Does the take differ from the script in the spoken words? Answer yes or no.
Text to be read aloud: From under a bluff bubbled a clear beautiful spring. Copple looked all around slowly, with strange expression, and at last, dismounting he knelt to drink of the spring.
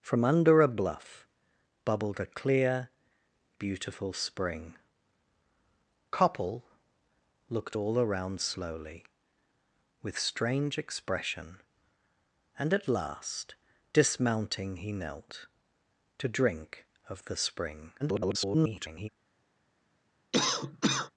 yes